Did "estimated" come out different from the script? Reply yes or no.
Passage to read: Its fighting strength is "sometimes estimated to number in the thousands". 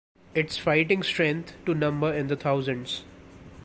yes